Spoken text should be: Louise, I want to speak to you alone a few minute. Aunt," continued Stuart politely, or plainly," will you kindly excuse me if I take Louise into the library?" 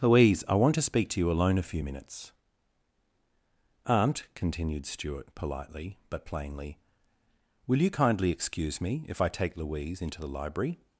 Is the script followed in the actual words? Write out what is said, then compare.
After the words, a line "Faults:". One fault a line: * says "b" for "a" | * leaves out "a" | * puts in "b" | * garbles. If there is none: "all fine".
Louise, I want to speak to you alone a few minutes. Aunt," continued Stuart politely, but plainly," will you kindly excuse me if I take Louise into the library?"
Faults:
* says "minutes" for "minute"
* says "but" for "or"